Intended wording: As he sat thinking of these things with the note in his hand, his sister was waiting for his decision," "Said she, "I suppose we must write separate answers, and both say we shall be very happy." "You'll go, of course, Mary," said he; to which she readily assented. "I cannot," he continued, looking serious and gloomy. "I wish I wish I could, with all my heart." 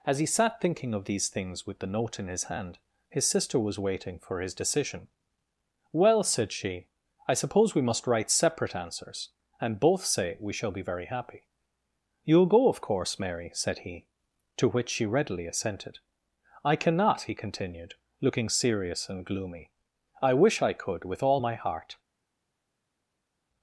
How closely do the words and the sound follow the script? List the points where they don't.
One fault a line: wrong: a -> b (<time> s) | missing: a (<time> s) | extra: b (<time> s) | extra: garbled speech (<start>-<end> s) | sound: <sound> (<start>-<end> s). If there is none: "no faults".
extra: Well (5.9 s)
missing: wish I (20.7 s)